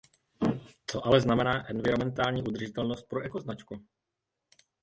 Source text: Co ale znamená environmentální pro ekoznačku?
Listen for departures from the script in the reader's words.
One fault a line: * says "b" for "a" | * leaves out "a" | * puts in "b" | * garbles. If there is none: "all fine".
* puts in "udržitelnost"